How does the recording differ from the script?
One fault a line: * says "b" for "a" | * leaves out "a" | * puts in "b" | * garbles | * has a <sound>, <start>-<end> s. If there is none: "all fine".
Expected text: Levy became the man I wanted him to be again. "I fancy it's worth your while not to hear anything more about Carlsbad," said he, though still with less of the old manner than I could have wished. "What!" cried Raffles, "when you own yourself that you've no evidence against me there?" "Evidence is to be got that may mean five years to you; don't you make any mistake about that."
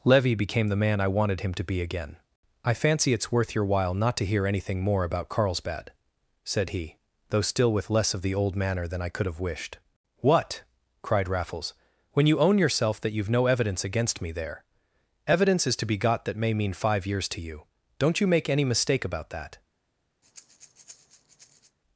* has a breath, 20.2-21.8 s